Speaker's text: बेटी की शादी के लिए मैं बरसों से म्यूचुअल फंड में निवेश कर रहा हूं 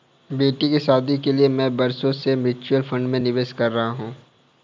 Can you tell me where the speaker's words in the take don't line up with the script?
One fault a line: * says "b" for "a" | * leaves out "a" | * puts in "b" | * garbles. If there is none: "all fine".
all fine